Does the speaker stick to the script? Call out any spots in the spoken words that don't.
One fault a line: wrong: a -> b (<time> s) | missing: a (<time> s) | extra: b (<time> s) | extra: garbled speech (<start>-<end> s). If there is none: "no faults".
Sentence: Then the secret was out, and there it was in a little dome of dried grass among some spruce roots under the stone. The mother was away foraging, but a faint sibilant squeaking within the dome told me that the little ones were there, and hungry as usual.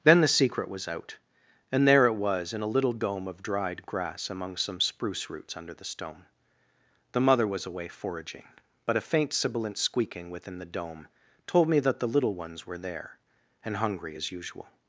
no faults